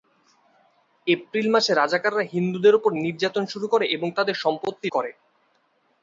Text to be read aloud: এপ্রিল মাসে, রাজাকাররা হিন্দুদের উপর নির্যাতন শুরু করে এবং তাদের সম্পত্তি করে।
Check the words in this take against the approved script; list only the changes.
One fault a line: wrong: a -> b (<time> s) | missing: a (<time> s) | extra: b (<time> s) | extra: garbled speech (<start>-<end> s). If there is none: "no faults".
no faults